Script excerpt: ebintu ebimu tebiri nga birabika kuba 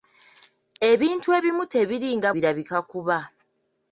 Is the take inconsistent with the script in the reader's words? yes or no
no